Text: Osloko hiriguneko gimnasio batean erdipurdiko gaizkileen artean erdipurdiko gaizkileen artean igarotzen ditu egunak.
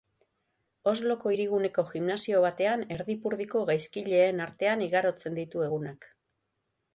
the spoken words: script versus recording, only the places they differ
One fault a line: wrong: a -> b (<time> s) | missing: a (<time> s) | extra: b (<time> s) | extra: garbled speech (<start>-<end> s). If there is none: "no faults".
missing: erdipurdiko gaizkileen artean (4.8 s)